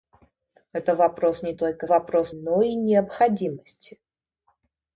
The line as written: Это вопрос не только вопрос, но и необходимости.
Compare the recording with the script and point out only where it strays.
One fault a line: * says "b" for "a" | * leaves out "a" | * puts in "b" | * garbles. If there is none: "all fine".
all fine